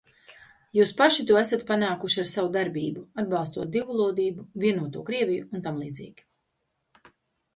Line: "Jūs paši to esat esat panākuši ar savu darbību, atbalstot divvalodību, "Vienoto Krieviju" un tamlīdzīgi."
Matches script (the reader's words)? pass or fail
fail